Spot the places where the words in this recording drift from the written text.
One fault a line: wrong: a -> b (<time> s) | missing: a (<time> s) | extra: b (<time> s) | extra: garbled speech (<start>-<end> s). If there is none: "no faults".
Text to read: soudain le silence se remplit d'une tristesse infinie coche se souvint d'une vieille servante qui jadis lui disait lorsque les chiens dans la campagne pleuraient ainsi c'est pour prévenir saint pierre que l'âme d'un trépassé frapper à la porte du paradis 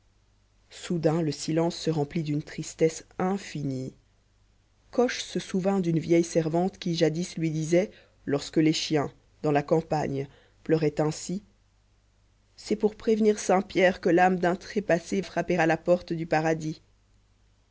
no faults